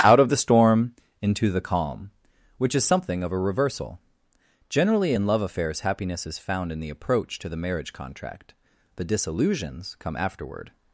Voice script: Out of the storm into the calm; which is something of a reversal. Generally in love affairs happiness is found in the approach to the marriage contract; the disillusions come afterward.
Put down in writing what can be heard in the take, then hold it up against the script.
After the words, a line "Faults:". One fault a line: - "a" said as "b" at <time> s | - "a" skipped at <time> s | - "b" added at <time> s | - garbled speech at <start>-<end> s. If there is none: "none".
Out of the storm into the calm; which is something of a reversal. Generally in love affairs happiness is found in the approach to the marriage contract; the disillusions come afterward.
Faults:
none